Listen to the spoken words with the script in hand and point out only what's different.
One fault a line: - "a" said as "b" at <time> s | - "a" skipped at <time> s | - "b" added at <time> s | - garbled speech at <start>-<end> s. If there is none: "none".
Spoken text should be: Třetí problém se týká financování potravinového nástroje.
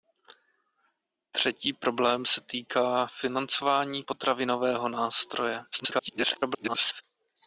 - garbled speech at 5.7-7.0 s